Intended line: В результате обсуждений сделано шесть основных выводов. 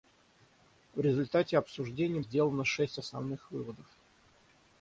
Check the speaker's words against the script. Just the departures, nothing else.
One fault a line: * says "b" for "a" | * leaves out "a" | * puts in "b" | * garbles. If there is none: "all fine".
all fine